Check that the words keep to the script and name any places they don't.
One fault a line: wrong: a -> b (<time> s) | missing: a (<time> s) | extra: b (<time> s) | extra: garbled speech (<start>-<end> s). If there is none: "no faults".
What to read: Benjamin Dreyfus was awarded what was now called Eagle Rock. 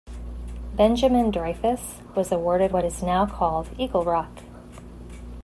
wrong: was -> is (2.8 s)